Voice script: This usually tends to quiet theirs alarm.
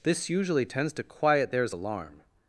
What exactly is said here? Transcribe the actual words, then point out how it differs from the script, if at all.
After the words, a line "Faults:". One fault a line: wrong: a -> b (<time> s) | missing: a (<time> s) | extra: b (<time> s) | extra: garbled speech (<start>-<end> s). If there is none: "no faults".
This usually tends to quiet theirs alarm.
Faults:
no faults